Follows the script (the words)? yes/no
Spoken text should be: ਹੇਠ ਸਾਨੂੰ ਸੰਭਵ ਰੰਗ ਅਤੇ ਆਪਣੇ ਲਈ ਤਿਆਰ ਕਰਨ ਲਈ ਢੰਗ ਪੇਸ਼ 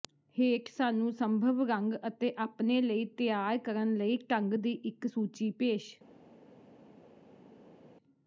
no